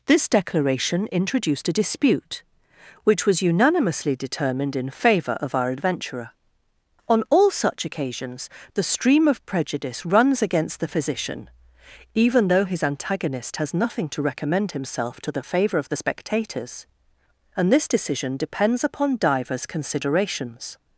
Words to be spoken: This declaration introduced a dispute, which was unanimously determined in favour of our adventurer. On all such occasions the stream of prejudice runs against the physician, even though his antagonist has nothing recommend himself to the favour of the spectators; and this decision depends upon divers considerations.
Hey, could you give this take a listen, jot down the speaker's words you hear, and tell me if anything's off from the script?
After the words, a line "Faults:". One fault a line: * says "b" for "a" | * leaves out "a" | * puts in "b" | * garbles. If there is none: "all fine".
This declaration introduced a dispute, which was unanimously determined in favour of our adventurer. On all such occasions the stream of prejudice runs against the physician, even though his antagonist has nothing to recommend himself to the favour of the spectators; and this decision depends upon divers considerations.
Faults:
* puts in "to"